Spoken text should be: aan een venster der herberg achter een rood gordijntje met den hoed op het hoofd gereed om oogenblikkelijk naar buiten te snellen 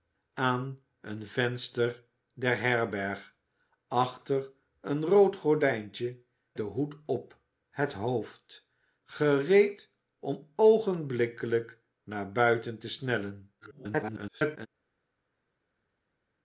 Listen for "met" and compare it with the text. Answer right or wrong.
wrong